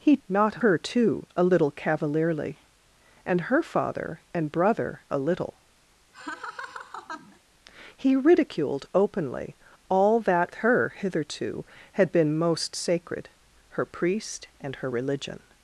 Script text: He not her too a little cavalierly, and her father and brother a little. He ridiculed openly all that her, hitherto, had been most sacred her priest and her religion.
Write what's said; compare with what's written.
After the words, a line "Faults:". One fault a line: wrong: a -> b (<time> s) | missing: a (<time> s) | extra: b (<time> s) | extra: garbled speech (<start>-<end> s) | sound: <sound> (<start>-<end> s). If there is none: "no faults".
He not her too a little cavalierly, and her father and brother a little. He ridiculed openly all that her, hitherto, had been most sacred her priest and her religion.
Faults:
sound: laugh (6.1-7.4 s)